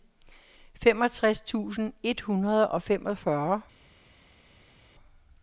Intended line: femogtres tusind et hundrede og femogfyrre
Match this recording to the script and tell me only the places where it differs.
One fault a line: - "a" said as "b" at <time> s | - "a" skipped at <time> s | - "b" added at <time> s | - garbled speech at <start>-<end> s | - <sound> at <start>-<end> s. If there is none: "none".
none